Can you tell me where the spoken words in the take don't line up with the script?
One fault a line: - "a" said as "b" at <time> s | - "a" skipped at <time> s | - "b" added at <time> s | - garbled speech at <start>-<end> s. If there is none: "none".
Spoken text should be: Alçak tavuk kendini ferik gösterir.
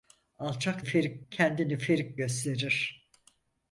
- "tavuk" said as "ferik" at 0.8 s